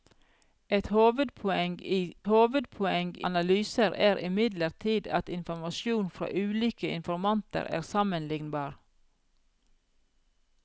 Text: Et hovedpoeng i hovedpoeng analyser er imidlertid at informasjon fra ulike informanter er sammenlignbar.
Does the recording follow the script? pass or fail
pass